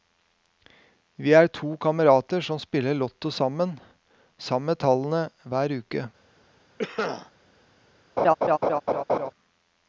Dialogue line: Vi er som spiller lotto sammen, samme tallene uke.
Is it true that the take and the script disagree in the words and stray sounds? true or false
true